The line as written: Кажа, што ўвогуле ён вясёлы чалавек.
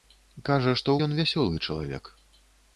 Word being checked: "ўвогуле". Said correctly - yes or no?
no